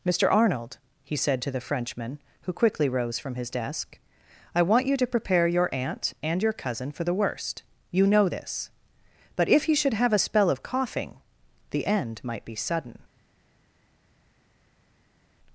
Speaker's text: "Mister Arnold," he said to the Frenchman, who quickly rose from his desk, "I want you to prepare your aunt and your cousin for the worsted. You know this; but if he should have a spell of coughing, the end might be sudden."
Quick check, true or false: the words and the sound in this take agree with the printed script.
false